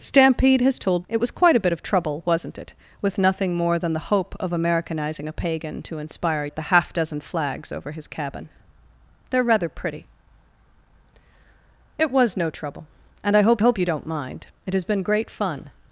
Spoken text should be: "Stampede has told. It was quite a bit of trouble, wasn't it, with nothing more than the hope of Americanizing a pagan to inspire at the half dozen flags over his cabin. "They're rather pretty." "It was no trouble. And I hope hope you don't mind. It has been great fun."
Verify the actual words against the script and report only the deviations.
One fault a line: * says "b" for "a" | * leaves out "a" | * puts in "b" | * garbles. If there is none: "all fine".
all fine